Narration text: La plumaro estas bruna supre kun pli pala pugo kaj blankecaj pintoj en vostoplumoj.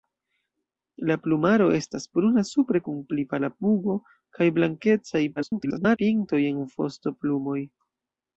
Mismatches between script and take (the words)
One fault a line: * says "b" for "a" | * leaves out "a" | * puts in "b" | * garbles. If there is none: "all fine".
* garbles